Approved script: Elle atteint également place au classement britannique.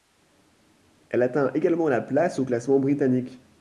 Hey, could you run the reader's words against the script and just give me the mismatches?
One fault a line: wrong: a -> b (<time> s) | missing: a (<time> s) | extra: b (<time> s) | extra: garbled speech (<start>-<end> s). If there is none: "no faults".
extra: la (1.9 s)